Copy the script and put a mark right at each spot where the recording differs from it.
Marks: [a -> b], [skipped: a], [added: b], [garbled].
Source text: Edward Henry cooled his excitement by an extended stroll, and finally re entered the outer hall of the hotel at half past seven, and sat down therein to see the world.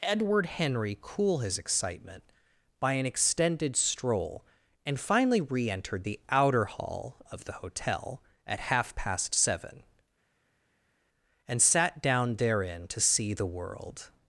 Edward Henry [cooled -> cool] his excitement by an extended stroll, and finally re entered the outer hall of the hotel at half past seven, and sat down therein to see the world.